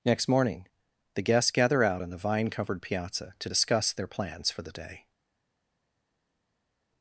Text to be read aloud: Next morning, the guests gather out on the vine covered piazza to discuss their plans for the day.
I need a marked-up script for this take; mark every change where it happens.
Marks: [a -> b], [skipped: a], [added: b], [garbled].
Next morning, the guests gather out on the vine covered piazza to discuss their plans for the day.